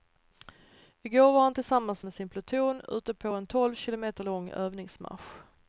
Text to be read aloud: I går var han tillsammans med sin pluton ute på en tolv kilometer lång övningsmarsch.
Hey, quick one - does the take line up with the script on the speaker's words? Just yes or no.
yes